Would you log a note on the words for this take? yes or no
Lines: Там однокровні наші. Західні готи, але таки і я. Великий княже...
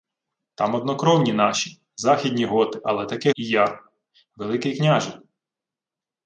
no